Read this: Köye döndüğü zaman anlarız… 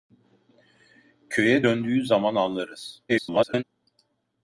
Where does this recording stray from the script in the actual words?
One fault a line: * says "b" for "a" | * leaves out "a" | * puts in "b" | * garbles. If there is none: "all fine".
* garbles